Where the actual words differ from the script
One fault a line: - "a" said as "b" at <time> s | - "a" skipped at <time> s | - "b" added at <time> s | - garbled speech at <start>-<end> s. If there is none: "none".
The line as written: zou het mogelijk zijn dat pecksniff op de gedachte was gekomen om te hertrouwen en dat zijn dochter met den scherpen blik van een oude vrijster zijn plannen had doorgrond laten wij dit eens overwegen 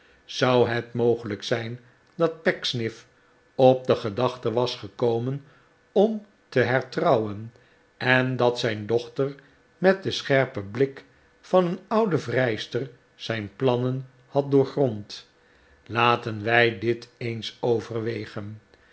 none